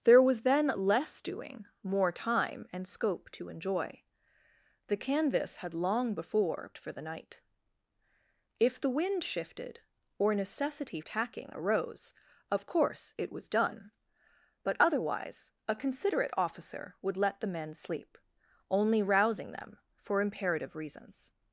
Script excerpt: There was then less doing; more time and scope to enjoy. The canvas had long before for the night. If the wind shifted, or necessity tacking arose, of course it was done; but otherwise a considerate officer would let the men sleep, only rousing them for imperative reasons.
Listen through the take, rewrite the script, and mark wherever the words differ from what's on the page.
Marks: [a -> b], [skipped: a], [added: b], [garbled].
There was then less doing; more time and scope to enjoy. The canvas had long before for the night. If the wind shifted, or necessity tacking arose, of course it was done; but otherwise a considerate officer would let the men sleep, only rousing them for imperative reasons.